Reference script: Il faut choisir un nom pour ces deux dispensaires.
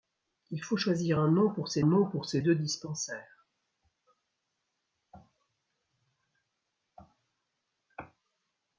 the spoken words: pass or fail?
fail